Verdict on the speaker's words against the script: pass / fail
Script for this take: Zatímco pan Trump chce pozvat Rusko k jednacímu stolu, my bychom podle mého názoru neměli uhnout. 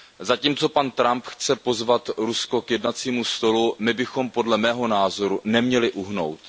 pass